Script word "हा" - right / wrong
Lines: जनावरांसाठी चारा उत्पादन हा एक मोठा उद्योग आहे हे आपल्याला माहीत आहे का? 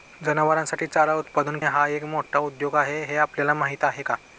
right